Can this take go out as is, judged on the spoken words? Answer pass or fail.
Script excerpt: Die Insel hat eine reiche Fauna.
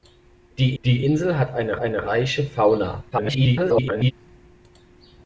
fail